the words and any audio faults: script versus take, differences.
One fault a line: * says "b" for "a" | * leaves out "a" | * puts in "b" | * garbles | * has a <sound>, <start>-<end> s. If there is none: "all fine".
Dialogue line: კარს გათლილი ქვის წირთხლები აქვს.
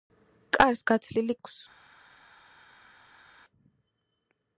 * leaves out "ქვის წირთხლები"